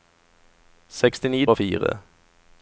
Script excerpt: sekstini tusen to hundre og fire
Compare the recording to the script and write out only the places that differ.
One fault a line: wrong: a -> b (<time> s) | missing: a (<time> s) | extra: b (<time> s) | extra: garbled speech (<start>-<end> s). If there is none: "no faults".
missing: tusen to hundre (1.4 s)